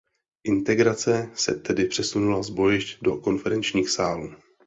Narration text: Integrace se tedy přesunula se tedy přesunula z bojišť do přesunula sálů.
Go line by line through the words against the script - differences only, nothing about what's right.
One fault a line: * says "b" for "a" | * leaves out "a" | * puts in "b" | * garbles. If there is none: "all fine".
* leaves out "se tedy přesunula"
* says "konferenčních" for "přesunula"